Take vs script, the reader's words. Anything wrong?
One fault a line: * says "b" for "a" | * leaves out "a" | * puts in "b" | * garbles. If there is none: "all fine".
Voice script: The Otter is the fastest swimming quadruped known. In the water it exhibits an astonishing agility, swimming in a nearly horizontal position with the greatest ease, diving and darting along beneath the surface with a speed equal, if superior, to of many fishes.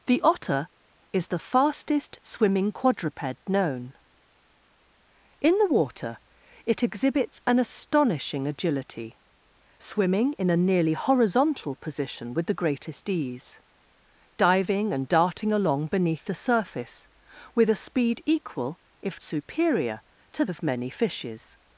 all fine